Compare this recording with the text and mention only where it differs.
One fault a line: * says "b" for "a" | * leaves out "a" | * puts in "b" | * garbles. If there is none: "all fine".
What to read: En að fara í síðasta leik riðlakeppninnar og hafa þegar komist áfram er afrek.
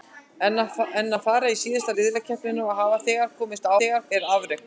* leaves out "leik"
* says "þegar" for "áfram"